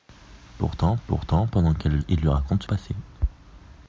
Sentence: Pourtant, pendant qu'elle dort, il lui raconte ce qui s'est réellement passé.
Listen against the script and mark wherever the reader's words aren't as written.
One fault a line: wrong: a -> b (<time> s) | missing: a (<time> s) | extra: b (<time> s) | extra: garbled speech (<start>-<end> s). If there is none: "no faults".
extra: pourtant (1.1 s)
missing: dort (2.0 s)
missing: qui s'est réellement (2.7 s)